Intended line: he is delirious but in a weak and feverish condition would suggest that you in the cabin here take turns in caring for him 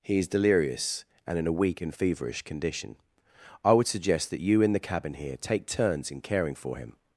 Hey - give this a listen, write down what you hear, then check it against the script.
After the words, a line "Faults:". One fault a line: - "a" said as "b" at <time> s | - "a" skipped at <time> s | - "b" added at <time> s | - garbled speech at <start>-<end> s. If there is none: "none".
he is delirious and in a weak and feverish condition i would suggest that you in the cabin here take turns in caring for him
Faults:
- "but" said as "and" at 1.3 s
- "i" added at 3.6 s